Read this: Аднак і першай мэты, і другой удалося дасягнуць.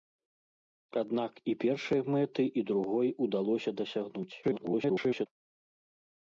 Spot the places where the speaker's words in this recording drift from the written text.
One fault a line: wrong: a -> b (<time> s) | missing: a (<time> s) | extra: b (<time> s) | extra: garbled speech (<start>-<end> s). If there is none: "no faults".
extra: garbled speech (4.4-5.3 s)